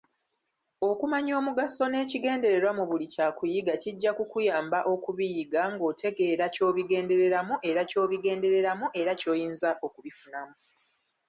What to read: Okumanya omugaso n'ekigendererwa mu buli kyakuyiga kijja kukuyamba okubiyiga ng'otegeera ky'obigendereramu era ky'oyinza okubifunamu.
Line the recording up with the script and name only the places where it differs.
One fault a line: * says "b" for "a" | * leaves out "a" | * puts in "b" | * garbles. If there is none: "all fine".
* puts in "ky'obigendereramu era"